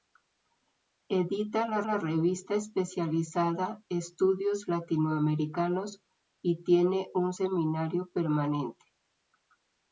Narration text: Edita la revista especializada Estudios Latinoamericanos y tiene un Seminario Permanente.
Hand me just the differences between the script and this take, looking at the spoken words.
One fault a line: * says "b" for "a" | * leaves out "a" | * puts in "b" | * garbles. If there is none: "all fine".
* puts in "la"